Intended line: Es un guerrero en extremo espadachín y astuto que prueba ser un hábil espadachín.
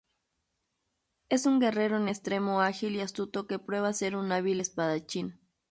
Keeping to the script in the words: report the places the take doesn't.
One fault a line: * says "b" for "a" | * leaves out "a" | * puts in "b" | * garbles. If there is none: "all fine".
* says "ágil" for "espadachín"